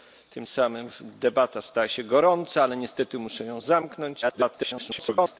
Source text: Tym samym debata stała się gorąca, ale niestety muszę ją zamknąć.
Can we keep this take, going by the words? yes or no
no